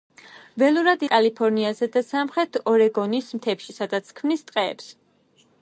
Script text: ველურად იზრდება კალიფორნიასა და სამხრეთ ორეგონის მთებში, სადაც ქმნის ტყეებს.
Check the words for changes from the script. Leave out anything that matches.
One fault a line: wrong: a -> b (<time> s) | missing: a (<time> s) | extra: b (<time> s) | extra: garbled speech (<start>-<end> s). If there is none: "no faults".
missing: იზრდება (1.0 s)